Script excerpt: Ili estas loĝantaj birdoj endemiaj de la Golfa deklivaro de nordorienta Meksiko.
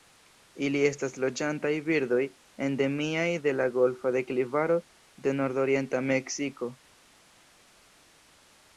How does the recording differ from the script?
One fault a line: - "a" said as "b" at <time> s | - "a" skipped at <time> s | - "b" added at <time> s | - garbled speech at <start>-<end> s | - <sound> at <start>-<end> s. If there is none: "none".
none